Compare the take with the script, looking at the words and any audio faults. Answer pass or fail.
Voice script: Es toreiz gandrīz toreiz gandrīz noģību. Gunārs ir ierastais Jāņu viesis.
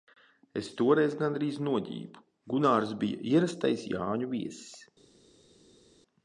fail